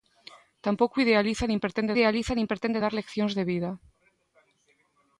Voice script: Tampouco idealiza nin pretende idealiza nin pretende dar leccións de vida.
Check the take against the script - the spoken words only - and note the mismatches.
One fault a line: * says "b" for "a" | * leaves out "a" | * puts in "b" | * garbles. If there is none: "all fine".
all fine